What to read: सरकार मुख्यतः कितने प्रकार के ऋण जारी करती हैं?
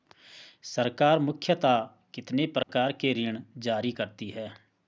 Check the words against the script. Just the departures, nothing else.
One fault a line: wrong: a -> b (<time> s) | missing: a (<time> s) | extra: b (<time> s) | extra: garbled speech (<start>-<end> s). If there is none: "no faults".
no faults